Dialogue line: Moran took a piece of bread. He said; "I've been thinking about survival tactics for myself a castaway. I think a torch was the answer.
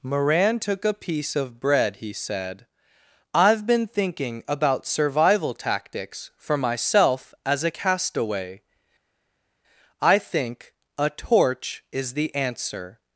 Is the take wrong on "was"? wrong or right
wrong